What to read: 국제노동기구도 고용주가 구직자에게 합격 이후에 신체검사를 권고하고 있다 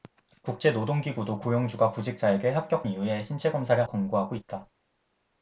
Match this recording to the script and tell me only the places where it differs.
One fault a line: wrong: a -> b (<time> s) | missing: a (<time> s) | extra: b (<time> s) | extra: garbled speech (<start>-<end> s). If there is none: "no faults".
no faults